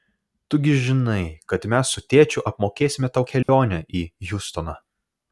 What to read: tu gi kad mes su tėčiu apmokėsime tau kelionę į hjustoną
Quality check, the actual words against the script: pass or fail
fail